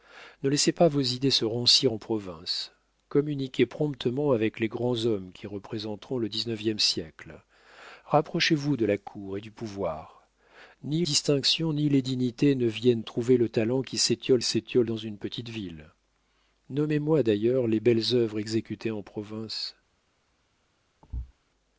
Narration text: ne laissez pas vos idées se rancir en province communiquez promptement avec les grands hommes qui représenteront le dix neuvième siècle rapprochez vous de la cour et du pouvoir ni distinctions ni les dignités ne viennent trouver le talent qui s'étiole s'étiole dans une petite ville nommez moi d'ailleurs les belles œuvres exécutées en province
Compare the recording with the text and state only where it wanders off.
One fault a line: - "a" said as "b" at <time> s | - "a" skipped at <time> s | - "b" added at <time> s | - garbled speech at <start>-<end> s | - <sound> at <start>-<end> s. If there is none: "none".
- thud at 21.0-21.3 s